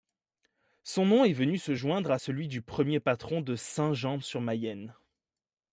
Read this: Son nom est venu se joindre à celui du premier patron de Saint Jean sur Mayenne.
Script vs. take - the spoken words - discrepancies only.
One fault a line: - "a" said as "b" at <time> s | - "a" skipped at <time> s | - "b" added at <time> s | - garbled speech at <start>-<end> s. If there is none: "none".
none